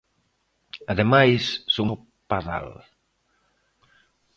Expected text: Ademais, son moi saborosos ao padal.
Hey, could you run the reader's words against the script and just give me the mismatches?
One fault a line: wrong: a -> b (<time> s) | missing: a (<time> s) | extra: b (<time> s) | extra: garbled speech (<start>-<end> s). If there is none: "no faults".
missing: moi saborosos (1.9 s)